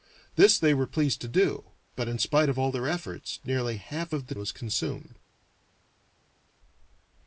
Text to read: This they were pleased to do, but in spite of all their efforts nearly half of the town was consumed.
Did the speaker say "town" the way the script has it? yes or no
no